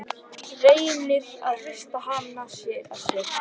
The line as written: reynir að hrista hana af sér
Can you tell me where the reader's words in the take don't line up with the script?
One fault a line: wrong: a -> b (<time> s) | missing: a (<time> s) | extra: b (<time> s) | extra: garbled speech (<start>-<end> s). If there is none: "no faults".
no faults